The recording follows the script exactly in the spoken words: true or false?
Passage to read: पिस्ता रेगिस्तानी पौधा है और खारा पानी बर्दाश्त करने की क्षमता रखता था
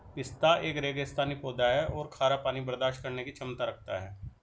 false